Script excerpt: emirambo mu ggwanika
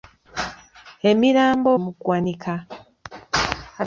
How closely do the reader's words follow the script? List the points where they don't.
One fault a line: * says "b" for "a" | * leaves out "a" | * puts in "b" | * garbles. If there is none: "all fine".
all fine